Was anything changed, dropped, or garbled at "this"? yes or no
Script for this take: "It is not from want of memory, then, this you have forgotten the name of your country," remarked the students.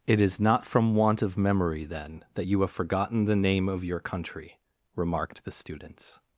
yes